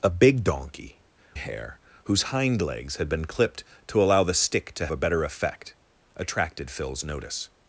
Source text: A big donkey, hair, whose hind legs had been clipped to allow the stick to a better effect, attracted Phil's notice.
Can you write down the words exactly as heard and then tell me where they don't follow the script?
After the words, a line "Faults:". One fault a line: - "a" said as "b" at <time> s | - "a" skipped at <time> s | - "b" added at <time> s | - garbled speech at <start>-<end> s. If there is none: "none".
A big donkey, hair, whose hind legs had been clipped to allow the stick to a better effect, attracted Phil's notice.
Faults:
none